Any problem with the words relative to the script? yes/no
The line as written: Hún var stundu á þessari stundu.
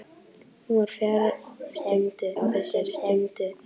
no